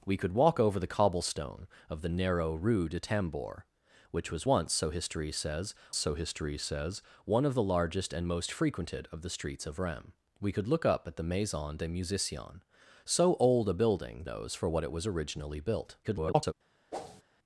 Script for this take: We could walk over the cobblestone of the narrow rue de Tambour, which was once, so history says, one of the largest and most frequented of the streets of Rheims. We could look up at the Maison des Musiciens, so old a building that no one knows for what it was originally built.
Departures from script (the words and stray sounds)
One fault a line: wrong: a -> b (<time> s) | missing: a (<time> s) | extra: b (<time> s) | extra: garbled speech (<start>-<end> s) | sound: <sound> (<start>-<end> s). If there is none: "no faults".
extra: so history says (6.0 s)
missing: that no one (14.2 s)
extra: garbled speech (16.0-16.5 s)
sound: whoosh (16.9-17.2 s)